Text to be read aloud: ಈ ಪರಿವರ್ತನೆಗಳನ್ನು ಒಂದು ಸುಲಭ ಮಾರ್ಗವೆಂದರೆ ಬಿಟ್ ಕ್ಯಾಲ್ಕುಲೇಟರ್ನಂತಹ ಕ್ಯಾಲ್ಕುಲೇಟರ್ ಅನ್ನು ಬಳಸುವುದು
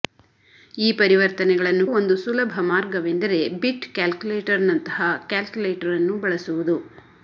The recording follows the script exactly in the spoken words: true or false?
true